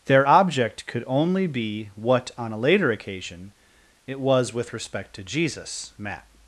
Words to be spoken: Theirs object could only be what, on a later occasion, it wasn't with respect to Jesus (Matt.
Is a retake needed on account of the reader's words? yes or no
yes